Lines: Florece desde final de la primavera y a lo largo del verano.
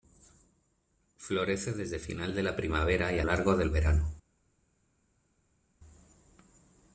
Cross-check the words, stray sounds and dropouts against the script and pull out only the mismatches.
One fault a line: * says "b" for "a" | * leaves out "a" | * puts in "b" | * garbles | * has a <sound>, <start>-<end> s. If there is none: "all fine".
* leaves out "lo"